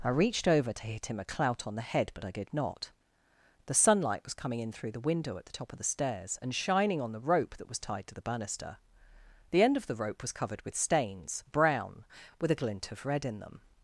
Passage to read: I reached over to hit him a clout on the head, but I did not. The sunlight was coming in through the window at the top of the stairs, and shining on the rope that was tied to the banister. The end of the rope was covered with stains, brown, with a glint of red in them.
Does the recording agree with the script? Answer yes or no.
yes